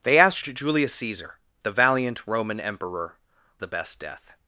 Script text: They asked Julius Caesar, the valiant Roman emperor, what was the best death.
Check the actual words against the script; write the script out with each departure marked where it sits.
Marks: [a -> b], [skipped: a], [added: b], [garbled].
They asked Julius Caesar, the valiant Roman emperor, [skipped: what was] the best death.